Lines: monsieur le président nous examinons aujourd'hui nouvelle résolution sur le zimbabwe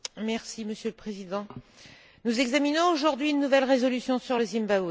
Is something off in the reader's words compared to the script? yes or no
yes